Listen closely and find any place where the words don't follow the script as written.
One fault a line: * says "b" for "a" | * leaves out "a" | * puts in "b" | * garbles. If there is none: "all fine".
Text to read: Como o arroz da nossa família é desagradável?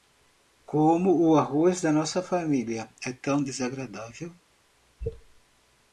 * puts in "tão"